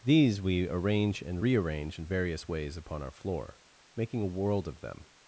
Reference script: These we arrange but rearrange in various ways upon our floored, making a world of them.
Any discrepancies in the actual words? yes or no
yes